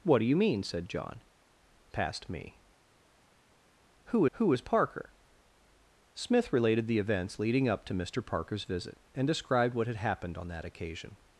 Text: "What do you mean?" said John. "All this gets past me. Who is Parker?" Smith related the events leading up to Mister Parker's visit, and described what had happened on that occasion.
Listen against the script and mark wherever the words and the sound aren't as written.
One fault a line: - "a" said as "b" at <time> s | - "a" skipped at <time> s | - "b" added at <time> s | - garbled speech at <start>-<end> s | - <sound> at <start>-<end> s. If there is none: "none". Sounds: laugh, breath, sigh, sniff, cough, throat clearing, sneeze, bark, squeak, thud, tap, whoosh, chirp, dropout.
- "All this gets" skipped at 1.2 s
- "who" added at 4.3 s